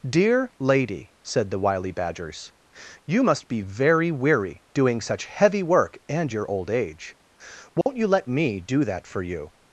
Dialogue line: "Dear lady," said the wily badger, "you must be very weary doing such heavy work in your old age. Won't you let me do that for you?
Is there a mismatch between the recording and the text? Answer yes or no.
yes